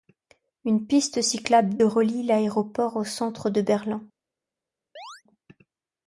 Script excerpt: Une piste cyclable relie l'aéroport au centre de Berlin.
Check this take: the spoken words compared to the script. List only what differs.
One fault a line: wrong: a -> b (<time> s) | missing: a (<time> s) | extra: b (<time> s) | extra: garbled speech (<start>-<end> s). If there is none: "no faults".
no faults